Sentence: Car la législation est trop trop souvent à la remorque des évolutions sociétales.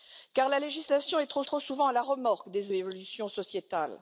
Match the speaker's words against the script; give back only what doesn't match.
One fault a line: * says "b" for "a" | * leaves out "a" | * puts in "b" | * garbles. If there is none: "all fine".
all fine